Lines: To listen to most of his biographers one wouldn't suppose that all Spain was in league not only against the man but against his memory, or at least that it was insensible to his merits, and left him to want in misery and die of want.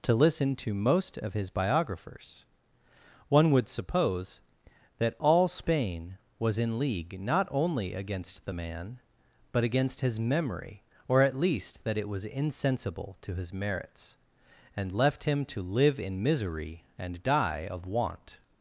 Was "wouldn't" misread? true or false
true